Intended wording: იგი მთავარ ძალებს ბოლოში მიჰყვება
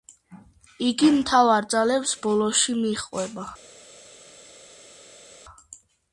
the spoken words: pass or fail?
pass